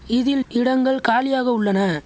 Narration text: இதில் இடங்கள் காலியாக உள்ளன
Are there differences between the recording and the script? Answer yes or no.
no